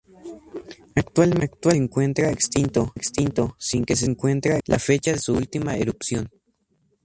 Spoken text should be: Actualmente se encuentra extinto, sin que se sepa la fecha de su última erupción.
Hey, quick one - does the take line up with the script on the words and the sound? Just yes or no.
no